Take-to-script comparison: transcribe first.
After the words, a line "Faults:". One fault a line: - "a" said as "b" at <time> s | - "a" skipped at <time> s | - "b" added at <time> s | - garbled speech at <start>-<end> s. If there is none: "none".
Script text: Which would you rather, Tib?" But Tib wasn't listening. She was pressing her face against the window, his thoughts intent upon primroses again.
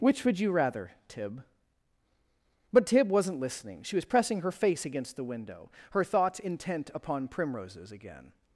Which would you rather, Tib?" But Tib wasn't listening. She was pressing her face against the window, her thoughts intent upon primroses again.
Faults:
- "his" said as "her" at 5.9 s